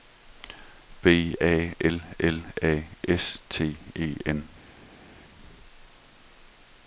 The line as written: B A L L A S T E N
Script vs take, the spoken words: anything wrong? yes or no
no